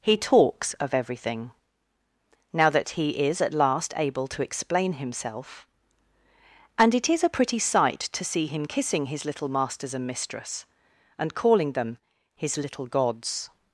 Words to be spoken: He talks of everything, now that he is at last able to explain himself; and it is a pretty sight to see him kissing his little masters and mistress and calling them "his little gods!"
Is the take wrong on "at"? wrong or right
right